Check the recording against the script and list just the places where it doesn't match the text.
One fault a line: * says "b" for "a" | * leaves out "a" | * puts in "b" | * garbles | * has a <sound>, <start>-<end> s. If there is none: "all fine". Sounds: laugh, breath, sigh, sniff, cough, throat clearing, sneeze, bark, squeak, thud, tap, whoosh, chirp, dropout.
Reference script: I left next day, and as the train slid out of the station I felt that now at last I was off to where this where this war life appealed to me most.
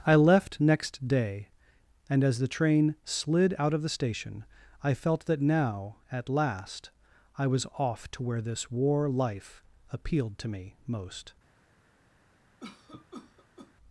* leaves out "where this"
* has a cough, 12.6-13.7 s